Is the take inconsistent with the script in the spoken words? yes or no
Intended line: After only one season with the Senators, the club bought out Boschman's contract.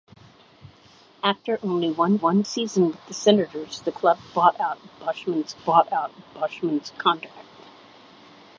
yes